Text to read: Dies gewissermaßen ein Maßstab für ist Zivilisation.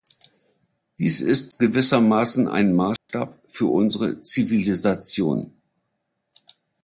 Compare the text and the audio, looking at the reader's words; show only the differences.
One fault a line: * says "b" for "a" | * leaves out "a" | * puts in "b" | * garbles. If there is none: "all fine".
* puts in "ist"
* says "unsere" for "ist"